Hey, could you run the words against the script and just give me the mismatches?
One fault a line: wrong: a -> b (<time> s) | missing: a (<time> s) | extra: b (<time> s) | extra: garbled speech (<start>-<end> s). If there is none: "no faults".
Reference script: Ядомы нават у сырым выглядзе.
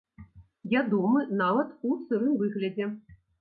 no faults